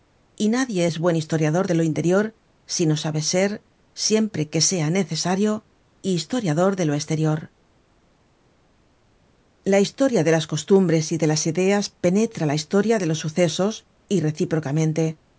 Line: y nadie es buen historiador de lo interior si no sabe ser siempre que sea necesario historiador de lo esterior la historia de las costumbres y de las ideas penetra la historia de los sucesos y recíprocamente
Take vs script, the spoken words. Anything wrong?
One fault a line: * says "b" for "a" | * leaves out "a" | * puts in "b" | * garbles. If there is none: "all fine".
all fine